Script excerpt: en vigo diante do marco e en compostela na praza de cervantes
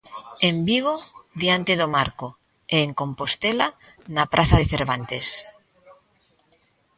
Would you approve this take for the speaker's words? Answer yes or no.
yes